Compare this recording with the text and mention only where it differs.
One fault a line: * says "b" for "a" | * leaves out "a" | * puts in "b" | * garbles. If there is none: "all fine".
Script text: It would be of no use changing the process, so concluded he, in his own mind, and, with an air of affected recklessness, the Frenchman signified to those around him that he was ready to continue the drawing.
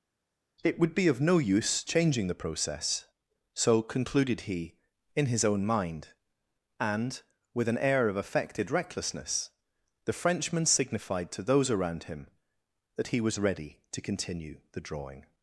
all fine